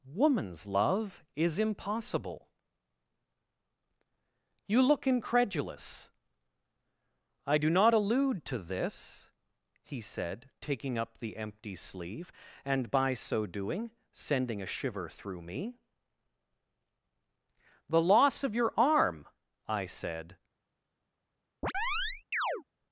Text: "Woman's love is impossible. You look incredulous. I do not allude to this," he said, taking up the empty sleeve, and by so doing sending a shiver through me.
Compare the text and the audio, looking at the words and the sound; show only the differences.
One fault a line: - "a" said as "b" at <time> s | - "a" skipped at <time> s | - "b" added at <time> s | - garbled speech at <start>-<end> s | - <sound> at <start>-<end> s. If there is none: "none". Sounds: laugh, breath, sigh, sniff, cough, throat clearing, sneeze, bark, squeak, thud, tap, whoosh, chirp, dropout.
- "The loss of your arm I said" added at 17.9 s
- chirp at 21.6-22.6 s